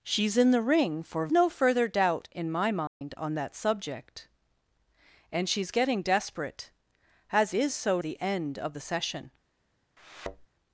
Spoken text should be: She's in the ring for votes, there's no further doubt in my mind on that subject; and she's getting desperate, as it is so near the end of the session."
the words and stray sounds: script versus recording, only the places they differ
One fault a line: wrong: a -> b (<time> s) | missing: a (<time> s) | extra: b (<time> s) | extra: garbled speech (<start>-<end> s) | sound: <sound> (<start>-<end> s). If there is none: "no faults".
missing: votes there's (1.3 s)
sound: dropout (2.9-3.0 s)
missing: it (7.6 s)
missing: near (8.0 s)
sound: thud (10.0-10.5 s)